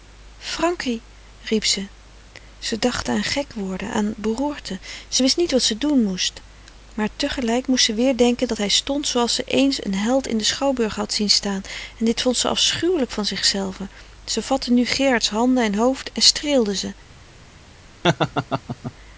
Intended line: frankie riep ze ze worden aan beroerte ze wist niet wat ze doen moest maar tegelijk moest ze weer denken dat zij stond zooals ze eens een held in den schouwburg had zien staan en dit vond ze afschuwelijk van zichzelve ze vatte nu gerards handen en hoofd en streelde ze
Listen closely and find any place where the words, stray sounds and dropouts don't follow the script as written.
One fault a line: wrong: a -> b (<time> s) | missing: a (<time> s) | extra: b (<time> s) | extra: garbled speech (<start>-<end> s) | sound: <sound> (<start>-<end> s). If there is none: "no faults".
extra: dacht aan gek (2.8 s)
wrong: zij -> hij (8.6 s)
sound: laugh (18.0-18.9 s)